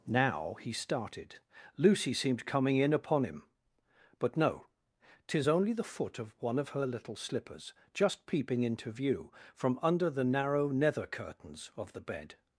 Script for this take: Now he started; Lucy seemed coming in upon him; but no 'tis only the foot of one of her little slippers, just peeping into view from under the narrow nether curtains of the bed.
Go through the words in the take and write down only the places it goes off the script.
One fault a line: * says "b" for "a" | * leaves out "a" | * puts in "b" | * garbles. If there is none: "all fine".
all fine